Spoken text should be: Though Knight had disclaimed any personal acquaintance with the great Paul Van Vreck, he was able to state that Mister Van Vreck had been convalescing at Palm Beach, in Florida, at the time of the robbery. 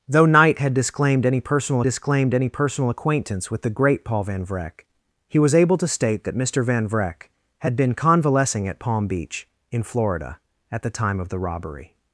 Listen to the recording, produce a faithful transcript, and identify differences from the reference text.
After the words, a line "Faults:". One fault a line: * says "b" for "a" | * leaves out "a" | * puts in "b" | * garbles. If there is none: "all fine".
Though Knight had disclaimed any personal disclaimed any personal acquaintance with the great Paul Van Vreck, he was able to state that Mister Van Vreck had been convalescing at Palm Beach, in Florida, at the time of the robbery.
Faults:
* puts in "disclaimed any personal"